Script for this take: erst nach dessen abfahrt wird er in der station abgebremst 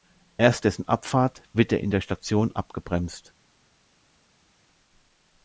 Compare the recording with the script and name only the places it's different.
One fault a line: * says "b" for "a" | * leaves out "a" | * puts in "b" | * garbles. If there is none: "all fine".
* leaves out "nach"